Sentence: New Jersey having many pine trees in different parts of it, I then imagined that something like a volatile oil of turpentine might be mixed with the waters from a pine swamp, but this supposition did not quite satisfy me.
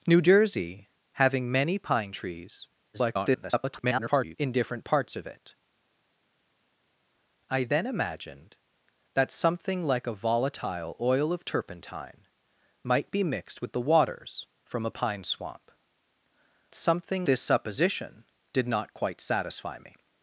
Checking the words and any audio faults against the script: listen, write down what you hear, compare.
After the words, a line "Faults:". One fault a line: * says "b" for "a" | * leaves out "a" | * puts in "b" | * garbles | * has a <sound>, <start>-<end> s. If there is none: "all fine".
New Jersey having many pine trees [garbled] in different parts of it, I then imagined that something like a volatile oil of turpentine might be mixed with the waters from a pine swamp, something this supposition did not quite satisfy me.
Faults:
* garbles
* says "something" for "but"